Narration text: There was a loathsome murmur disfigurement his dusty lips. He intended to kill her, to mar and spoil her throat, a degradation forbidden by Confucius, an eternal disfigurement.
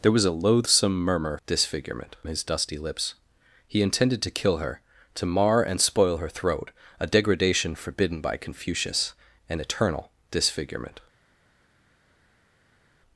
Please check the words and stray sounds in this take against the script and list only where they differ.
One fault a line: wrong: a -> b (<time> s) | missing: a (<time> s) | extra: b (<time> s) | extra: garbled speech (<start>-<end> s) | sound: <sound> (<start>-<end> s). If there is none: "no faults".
no faults